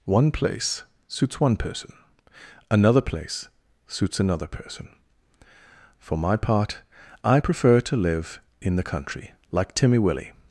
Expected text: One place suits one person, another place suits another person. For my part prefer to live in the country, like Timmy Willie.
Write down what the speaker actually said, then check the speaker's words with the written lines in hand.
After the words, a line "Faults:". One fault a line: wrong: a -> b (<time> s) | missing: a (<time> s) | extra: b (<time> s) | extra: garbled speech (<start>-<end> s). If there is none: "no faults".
One place suits one person, another place suits another person. For my part I prefer to live in the country, like Timmy Willie.
Faults:
extra: I (7.2 s)